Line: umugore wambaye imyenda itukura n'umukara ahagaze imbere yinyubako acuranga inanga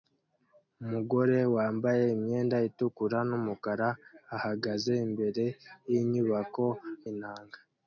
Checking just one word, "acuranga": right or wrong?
wrong